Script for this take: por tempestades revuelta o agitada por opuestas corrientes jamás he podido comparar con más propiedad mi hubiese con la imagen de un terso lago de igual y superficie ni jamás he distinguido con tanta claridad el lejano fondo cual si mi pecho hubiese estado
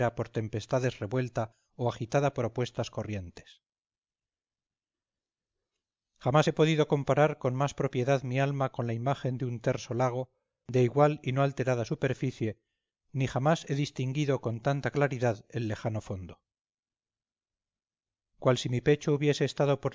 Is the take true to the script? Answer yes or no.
no